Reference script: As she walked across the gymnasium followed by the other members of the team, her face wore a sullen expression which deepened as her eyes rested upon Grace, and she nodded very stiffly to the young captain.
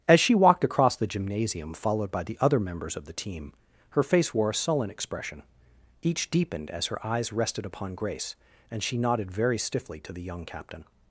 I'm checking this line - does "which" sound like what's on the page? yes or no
no